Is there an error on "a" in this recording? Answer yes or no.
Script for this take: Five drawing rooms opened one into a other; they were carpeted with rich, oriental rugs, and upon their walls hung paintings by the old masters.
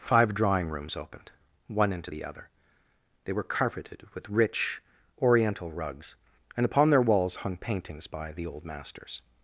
yes